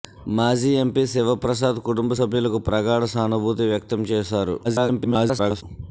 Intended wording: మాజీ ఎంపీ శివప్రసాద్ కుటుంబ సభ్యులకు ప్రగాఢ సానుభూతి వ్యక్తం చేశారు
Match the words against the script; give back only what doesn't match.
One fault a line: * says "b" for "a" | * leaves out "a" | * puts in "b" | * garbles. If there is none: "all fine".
* garbles